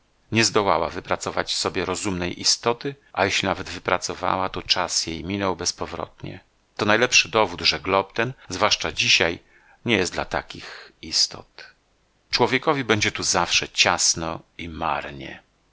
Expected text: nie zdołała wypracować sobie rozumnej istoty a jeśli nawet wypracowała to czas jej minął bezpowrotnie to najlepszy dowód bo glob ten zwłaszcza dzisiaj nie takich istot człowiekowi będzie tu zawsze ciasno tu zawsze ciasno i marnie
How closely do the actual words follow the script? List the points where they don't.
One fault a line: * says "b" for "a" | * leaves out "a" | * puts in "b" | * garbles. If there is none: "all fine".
* says "że" for "bo"
* puts in "jest dla"
* leaves out "tu zawsze ciasno"